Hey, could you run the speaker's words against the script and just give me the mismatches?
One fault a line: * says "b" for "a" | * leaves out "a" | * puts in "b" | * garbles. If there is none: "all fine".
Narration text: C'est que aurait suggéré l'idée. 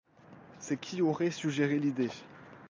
* says "qui" for "que"